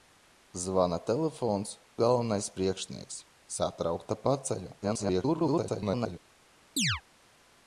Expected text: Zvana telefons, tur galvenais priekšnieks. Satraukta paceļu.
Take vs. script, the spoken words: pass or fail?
fail